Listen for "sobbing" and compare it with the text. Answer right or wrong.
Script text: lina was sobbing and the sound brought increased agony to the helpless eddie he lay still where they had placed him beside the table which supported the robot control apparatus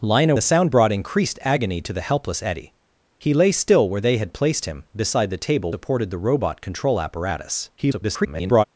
wrong